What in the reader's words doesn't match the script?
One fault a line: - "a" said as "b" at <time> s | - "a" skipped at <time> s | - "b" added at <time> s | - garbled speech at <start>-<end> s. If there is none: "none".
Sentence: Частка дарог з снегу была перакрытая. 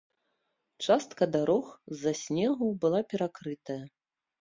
- "за" added at 2.1 s